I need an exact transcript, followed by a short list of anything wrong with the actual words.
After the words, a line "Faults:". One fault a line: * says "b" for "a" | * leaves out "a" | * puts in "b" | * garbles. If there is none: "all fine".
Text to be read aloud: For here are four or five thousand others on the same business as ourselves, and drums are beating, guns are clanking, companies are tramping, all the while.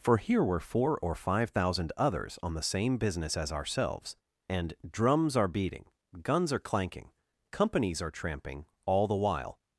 For here were four or five thousand others on the same business as ourselves, and drums are beating, guns are clanking, companies are tramping, all the while.
Faults:
* says "were" for "are"